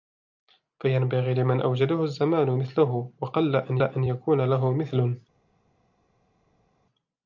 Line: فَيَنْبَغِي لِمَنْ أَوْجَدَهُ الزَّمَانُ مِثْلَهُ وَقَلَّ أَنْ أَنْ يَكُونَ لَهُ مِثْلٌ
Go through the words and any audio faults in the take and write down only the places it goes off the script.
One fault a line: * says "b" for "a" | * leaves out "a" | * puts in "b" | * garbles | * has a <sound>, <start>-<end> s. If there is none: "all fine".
all fine